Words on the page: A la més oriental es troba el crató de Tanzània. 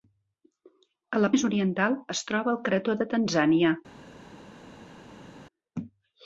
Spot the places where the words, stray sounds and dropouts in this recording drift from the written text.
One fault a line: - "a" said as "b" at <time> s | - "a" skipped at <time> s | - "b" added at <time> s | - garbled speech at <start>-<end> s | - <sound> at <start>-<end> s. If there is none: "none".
none